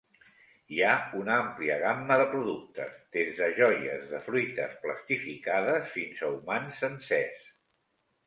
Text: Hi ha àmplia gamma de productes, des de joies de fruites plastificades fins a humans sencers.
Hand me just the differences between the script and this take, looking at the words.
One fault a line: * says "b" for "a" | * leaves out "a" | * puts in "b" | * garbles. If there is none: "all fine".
* puts in "una"